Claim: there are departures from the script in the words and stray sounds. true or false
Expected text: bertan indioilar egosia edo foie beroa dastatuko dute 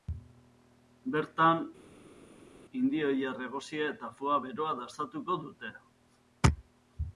true